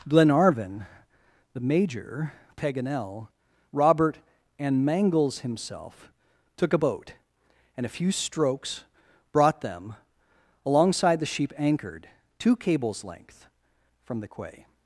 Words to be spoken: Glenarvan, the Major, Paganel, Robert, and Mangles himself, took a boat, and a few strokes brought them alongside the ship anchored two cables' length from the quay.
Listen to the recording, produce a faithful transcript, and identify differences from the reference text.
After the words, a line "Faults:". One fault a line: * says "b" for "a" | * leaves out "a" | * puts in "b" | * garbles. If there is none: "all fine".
Glenarvan, the Major, Paganel, Robert, and Mangles himself, took a boat, and a few strokes brought them alongside the sheep anchored two cables' length from the quay.
Faults:
* says "sheep" for "ship"